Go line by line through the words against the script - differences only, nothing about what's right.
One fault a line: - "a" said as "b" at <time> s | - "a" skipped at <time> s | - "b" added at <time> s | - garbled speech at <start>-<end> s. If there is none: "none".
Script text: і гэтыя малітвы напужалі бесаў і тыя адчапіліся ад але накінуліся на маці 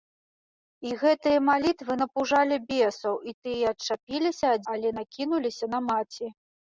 none